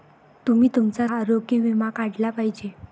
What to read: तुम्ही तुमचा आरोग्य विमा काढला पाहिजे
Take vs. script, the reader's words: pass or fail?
pass